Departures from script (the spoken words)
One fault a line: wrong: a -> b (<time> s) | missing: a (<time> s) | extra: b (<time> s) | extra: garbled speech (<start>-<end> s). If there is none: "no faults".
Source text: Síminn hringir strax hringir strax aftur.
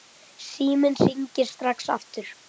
missing: hringir strax (1.9 s)